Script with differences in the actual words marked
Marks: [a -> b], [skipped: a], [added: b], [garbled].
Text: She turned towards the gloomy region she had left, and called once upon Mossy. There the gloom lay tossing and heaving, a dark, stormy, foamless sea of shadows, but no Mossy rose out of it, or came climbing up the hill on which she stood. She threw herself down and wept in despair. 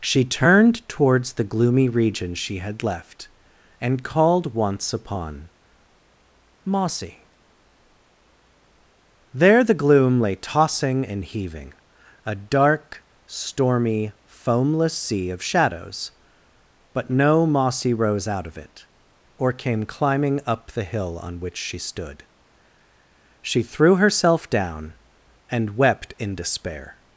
She turned towards the gloomy region she had left, and called once upon Mossy. There the gloom lay tossing and heaving, a dark, stormy, foamless sea of shadows, but no Mossy rose out of it, or came climbing up the hill on which she stood. She threw herself down and wept in despair.